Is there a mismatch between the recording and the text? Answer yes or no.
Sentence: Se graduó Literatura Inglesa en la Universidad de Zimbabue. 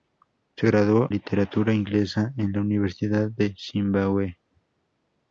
no